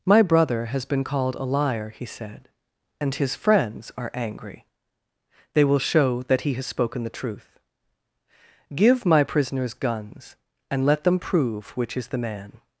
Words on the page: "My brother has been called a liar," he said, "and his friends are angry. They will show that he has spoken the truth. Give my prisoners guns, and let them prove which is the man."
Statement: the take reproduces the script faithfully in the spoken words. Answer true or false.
true